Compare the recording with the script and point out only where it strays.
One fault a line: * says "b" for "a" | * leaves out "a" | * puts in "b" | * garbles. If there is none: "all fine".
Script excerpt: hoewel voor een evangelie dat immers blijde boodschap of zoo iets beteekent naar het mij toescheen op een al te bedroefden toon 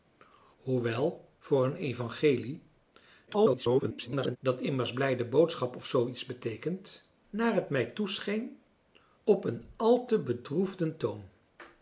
* garbles